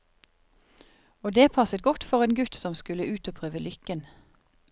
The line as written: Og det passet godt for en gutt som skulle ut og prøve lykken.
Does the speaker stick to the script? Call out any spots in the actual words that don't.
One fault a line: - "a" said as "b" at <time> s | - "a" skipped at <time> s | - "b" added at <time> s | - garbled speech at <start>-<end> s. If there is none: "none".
none